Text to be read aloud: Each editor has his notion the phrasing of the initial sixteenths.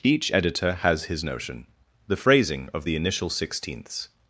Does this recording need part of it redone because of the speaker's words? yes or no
no